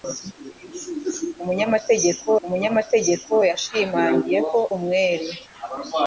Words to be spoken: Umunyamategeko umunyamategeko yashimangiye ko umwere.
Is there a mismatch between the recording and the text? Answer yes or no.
no